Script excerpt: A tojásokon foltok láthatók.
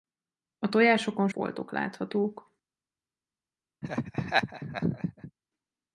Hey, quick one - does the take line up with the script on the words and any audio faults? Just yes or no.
no